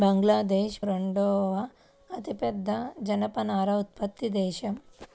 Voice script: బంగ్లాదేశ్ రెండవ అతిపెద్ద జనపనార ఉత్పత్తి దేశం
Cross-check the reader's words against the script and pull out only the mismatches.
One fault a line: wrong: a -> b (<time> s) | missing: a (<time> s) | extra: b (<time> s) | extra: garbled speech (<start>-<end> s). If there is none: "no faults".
no faults